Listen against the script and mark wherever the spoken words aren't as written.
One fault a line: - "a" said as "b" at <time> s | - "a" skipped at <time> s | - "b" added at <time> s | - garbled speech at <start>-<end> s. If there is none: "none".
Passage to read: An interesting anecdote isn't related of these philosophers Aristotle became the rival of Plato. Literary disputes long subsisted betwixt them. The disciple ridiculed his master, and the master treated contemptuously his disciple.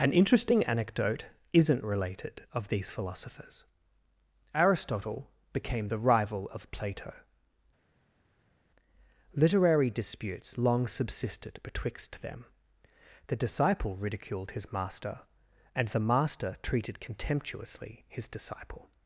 none